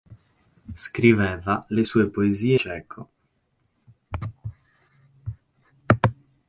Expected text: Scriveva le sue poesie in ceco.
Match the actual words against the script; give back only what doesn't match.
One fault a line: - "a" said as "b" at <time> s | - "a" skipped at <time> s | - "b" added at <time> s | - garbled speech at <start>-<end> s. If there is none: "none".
- "in" skipped at 2.6 s